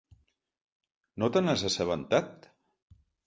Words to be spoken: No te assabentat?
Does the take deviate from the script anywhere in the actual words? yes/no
yes